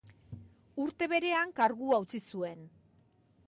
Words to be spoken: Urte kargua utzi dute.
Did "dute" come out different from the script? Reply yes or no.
yes